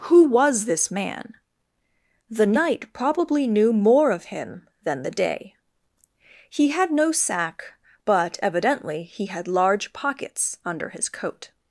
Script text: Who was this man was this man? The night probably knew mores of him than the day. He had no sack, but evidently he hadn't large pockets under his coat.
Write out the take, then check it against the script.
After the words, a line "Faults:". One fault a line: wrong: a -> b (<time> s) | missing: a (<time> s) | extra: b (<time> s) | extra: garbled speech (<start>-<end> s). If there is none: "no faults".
Who was this man? The night probably knew more of him than the day. He had no sack, but evidently he had large pockets under his coat.
Faults:
missing: was this man (1.4 s)
wrong: mores -> more (3.7 s)
wrong: hadn't -> had (9.3 s)